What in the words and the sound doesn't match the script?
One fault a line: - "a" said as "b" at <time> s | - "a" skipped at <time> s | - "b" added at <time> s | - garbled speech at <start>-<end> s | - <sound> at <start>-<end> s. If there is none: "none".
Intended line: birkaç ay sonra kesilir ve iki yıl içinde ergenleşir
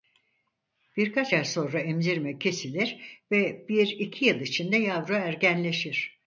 - "emzirme" added at 1.8 s
- "bir" added at 3.7 s
- "yavru" added at 4.8 s